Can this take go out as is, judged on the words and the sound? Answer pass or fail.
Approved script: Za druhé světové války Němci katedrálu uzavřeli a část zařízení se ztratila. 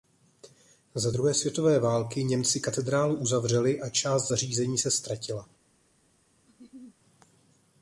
fail